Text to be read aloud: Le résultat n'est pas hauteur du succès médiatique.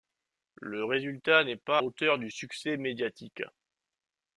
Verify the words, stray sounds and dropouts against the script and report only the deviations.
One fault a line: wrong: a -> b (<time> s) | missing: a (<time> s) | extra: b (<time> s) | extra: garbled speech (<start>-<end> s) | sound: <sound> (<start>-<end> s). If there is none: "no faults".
no faults